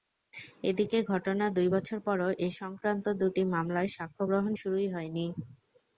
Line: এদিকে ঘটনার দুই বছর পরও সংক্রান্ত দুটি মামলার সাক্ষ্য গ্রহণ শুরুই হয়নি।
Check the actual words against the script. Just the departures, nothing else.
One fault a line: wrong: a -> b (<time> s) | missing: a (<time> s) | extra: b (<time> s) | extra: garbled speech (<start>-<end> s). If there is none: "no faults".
extra: এ (2.4 s)